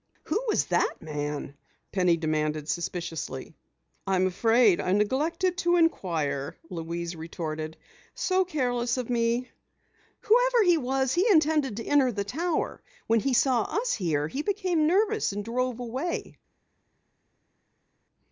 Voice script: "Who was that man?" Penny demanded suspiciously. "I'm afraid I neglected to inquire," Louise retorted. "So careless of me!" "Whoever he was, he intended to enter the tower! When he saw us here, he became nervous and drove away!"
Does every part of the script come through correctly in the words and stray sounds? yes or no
yes